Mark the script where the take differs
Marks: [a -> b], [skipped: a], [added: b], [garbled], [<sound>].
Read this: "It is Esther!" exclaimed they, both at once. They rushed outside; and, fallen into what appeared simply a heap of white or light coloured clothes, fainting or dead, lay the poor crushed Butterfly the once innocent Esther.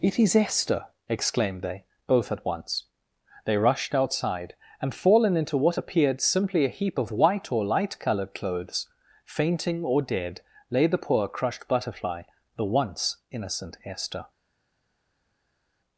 "It is Esther!" exclaimed they, both at once. They rushed outside; and, fallen into what appeared simply a heap of white or light coloured clothes, fainting or dead, lay the poor crushed Butterfly the once innocent Esther.